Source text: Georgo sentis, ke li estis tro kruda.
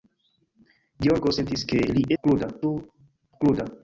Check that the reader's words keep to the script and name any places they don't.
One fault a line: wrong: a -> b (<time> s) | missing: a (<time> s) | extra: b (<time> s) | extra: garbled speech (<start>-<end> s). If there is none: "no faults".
wrong: estis -> kruda (2.2 s)